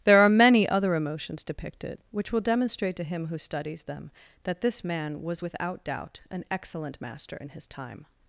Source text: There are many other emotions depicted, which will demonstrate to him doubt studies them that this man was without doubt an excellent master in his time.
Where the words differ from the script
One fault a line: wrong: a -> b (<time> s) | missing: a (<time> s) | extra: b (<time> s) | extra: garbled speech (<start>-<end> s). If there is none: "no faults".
wrong: doubt -> who (3.3 s)